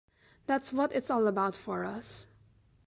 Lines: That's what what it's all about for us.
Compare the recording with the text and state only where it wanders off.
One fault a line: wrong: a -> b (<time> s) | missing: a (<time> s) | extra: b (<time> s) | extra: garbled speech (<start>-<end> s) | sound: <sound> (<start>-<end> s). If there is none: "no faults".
missing: what (0.9 s)